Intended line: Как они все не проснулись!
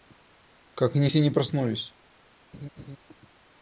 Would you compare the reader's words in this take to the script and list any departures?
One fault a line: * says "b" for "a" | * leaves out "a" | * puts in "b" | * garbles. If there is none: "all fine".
all fine